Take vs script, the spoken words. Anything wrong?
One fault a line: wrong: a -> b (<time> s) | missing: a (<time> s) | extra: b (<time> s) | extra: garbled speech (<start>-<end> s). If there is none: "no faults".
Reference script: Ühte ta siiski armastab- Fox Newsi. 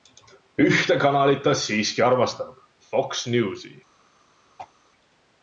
extra: kanalit (1.0 s)